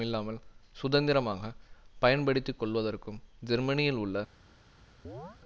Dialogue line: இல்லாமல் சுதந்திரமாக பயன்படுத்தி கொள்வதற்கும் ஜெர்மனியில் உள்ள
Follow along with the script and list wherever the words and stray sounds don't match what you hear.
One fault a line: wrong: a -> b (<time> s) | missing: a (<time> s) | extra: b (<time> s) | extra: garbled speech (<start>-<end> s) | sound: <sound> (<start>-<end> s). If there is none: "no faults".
sound: chirp (5.0-5.4 s)